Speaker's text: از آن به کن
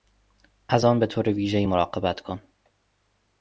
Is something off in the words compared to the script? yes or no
yes